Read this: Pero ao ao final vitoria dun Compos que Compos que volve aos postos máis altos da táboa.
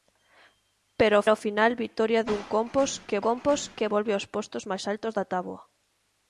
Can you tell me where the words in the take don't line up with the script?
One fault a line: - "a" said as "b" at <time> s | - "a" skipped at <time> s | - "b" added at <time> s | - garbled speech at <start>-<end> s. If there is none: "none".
none